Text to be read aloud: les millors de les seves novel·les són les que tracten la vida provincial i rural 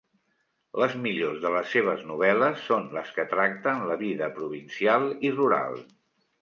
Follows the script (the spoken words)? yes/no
yes